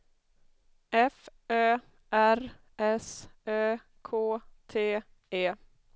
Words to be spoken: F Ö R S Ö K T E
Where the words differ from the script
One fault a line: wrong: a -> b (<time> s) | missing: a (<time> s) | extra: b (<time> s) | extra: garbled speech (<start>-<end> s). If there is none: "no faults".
no faults